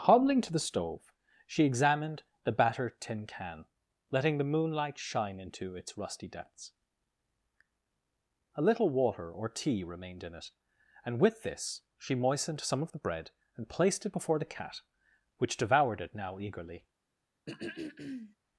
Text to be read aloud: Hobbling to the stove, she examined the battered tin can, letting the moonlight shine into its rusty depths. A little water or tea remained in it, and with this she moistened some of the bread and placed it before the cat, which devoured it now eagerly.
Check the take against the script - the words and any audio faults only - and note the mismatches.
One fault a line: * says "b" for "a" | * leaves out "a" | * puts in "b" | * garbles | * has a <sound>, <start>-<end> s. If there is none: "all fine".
* has a throat clearing, 17.5-18.4 s